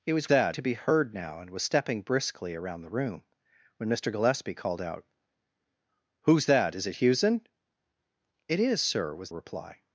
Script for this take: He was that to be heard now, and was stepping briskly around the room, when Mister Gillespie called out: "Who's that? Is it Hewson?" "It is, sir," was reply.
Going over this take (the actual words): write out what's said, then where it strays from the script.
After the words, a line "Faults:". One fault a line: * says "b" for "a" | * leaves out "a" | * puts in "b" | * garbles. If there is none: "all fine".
He was that to be heard now, and was stepping briskly around the room, when Mister Gillespie called out: "Who's that? Is it Hewson?" "It is, sir," was reply.
Faults:
all fine